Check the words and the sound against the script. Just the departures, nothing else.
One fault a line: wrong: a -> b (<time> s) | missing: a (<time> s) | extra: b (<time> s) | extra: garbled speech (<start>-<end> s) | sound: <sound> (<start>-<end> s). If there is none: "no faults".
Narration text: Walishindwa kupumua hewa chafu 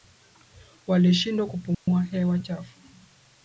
sound: dropout (1.7-1.9 s)